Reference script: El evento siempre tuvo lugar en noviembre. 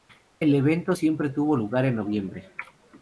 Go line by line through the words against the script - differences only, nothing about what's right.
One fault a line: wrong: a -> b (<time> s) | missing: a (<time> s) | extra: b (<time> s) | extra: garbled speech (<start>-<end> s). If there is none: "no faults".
no faults